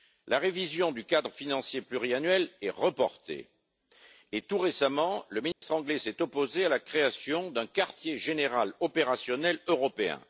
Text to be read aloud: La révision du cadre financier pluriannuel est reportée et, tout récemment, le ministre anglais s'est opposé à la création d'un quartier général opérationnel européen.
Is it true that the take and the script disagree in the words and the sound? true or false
true